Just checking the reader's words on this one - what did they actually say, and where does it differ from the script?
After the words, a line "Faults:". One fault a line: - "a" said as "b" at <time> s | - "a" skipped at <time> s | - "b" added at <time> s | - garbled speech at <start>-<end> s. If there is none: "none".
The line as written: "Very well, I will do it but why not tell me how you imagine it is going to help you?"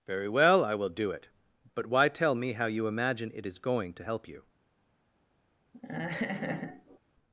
"Very well, I will do it but why tell me how you imagine it is going to help you?"
Faults:
- "not" skipped at 2.1 s